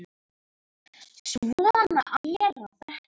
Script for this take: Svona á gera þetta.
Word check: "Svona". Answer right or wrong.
right